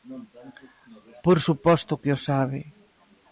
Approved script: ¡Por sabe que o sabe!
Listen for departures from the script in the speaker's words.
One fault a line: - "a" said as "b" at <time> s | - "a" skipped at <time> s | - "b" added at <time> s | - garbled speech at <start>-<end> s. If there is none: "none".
- "sabe" said as "suposto" at 1.4 s